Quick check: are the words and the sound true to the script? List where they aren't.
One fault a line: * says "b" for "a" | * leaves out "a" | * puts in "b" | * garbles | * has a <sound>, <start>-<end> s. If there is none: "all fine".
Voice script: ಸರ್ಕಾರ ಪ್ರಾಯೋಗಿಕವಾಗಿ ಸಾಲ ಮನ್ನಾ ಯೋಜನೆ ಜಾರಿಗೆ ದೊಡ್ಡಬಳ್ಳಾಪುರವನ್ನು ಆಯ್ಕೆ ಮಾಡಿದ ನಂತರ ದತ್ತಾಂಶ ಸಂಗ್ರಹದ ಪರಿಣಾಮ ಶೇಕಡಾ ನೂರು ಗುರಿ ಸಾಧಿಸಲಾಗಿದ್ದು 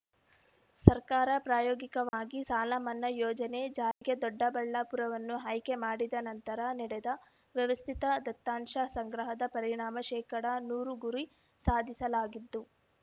* has a dropout, 2.1-2.1 s
* has a dropout, 3.9-4.0 s
* puts in "ನಡೆದ ವ್ಯವಸ್ಥಿತ"